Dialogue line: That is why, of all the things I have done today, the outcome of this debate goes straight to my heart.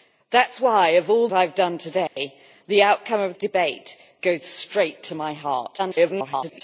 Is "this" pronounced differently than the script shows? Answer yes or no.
yes